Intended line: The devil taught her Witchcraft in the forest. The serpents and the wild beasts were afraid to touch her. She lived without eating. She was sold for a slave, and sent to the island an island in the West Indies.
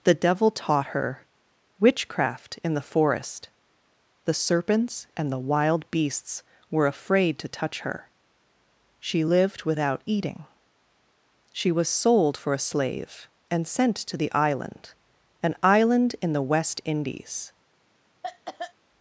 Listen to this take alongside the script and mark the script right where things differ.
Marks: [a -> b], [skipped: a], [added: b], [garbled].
The devil taught her Witchcraft in the forest. The serpents and the wild beasts were afraid to touch her. She lived without eating. She was sold for a slave, and sent to the island an island in the West Indies.